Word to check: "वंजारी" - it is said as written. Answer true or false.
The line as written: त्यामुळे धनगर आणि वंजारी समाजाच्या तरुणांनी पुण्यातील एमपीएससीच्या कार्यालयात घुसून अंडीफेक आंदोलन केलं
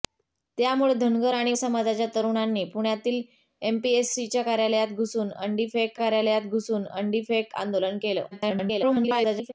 false